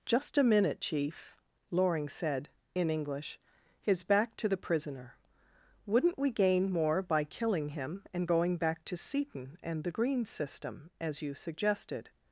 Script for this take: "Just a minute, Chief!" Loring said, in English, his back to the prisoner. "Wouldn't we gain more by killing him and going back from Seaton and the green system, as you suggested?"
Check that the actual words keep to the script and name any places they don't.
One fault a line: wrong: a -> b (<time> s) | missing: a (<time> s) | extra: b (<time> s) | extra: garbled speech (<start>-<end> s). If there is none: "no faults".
wrong: from -> to (8.9 s)